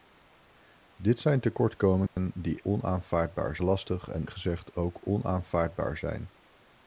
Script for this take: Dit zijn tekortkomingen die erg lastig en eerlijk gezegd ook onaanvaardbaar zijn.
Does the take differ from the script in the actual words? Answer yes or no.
yes